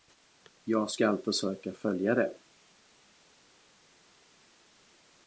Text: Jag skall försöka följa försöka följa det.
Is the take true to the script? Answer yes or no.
no